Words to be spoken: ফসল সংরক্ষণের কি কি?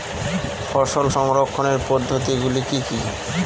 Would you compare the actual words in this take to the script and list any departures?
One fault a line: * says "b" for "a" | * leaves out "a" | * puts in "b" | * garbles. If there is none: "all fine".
* puts in "পদ্ধতিগুলি"